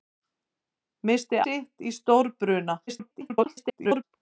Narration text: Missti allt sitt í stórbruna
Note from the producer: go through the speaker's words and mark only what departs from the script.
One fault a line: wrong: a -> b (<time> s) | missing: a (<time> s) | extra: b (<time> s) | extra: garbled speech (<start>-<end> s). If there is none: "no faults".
missing: allt (1.4 s)
extra: garbled speech (2.9-4.0 s)